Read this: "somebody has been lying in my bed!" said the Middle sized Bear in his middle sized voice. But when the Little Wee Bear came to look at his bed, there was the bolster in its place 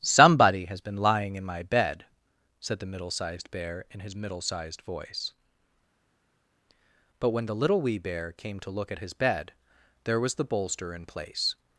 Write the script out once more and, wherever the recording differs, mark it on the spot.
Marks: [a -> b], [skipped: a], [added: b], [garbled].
"somebody has been lying in my bed!" said the Middle sized Bear in his middle sized voice. But when the Little Wee Bear came to look at his bed, there was the bolster in [skipped: its] place